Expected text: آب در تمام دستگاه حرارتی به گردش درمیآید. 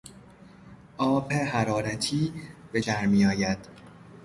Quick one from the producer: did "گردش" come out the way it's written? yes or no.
no